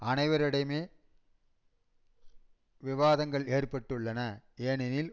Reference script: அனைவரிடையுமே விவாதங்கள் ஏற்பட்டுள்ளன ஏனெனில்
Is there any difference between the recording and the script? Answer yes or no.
no